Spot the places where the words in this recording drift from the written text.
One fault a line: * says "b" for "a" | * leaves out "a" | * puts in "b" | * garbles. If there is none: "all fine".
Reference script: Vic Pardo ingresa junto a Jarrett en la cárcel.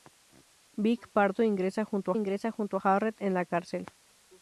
* puts in "ingresa junto"